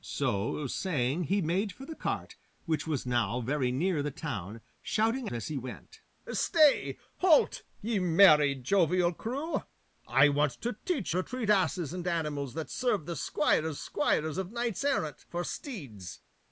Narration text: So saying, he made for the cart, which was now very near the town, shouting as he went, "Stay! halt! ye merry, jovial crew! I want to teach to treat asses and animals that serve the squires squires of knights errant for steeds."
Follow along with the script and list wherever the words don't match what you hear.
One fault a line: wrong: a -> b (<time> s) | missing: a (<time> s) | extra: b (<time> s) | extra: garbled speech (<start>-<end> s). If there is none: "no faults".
no faults